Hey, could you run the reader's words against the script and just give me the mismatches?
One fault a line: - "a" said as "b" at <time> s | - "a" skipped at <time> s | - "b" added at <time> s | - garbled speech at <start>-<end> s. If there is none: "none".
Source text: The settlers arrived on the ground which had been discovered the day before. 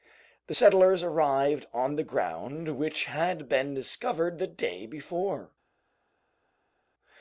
none